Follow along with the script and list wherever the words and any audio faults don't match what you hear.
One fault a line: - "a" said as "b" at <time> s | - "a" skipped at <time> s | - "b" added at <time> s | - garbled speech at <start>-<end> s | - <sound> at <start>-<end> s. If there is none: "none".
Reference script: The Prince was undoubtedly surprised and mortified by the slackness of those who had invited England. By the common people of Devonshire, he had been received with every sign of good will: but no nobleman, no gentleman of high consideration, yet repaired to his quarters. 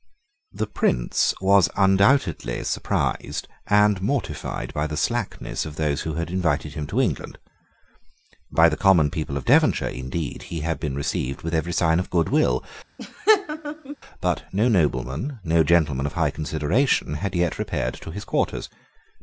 - "him to" added at 6.7 s
- "indeed" added at 9.9 s
- laugh at 13.0-14.0 s
- "had" added at 17.1 s